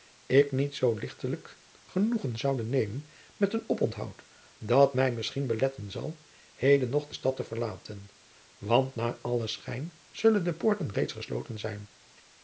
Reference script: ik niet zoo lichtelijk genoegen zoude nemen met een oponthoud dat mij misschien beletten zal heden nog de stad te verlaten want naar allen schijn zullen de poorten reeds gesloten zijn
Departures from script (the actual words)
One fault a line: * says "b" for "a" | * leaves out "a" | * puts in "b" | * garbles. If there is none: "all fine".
all fine